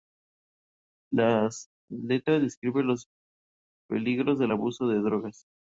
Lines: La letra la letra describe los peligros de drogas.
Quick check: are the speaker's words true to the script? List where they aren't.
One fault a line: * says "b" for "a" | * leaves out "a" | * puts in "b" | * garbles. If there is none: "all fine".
* leaves out "la letra"
* puts in "del abuso"